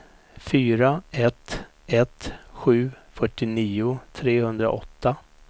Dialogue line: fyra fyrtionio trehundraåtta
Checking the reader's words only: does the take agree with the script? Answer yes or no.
no